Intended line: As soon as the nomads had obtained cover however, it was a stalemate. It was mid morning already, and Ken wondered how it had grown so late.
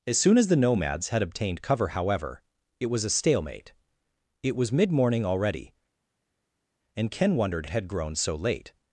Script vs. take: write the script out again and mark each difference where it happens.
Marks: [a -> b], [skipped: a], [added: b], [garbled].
As soon as the nomads had obtained cover however, it was a stalemate. It was mid morning already, and Ken wondered [skipped: how] it had grown so late.